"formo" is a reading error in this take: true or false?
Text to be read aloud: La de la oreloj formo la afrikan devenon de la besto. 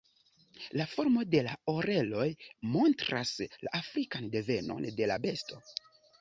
true